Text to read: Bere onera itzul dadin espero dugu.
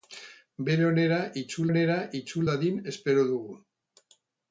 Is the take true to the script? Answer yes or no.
no